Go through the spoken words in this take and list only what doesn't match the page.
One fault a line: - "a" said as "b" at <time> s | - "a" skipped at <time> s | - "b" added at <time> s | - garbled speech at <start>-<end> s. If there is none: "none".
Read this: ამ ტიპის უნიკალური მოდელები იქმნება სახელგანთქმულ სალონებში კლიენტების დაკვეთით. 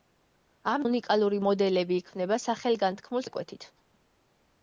- "ტიპის" skipped at 0.8 s
- "სალონებში კლიენტების" skipped at 3.3 s